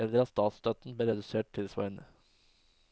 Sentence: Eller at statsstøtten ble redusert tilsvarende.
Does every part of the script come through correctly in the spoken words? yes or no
yes